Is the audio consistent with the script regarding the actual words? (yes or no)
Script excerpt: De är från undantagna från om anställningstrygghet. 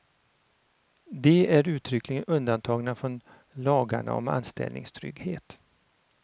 no